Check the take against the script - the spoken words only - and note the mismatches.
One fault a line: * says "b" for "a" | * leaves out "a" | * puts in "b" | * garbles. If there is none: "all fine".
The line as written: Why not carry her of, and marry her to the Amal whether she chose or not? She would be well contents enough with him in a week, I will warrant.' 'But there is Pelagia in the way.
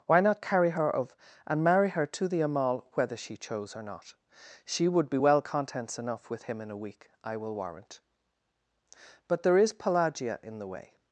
all fine